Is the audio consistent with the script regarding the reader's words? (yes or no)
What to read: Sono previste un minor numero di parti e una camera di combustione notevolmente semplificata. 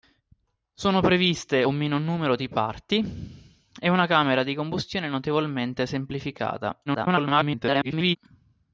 no